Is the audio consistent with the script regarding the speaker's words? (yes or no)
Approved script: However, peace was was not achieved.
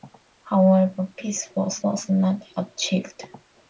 yes